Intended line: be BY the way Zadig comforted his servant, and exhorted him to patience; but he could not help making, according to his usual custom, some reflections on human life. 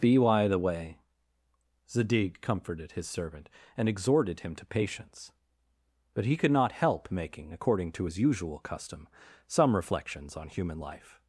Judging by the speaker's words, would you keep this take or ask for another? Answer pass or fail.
pass